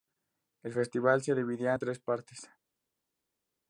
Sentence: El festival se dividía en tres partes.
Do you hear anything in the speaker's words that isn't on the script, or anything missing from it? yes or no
no